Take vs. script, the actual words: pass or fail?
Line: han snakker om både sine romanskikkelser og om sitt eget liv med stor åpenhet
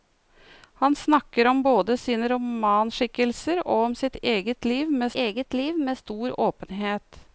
fail